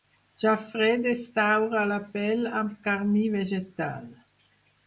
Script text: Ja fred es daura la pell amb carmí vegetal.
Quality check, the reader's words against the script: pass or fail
pass